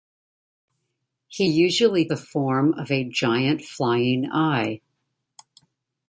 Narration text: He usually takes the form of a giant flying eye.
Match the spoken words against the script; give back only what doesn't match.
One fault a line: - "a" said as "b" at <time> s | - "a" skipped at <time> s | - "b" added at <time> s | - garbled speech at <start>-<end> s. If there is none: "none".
- "takes" skipped at 2.1 s